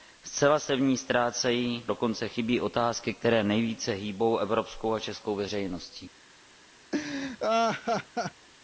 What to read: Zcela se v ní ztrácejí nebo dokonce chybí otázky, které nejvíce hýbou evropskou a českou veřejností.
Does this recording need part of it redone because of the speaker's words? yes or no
yes